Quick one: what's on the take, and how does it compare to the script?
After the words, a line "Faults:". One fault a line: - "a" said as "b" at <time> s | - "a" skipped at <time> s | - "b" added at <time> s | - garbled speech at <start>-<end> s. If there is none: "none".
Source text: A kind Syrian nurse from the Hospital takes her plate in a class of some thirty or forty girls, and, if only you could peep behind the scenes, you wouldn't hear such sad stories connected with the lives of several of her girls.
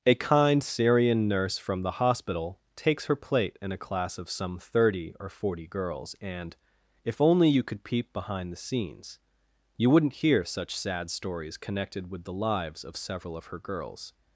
A kind Syrian nurse from the Hospital takes her plate in a class of some thirty or forty girls, and, if only you could peep behind the scenes, you wouldn't hear such sad stories connected with the lives of several of her girls.
Faults:
none